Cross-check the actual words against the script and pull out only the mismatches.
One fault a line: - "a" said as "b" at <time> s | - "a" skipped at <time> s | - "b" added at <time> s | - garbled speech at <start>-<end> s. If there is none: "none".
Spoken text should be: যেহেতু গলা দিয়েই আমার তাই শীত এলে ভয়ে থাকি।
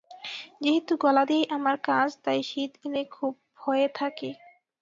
- "কাজ" added at 1.9 s
- "খুব" added at 3.1 s